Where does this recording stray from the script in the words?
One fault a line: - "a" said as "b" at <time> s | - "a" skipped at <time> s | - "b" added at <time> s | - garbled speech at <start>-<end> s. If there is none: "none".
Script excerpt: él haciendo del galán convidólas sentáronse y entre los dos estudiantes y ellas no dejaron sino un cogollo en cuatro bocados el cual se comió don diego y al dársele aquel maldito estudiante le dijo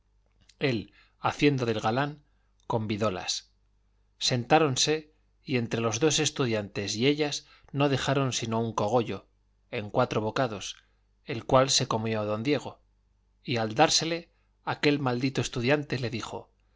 none